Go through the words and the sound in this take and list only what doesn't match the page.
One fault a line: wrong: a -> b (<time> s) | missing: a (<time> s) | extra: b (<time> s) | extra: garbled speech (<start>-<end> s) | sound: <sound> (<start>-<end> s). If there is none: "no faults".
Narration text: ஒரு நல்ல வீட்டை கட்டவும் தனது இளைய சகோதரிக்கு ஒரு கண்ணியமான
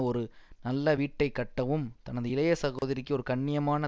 sound: dropout (2.8-2.8 s)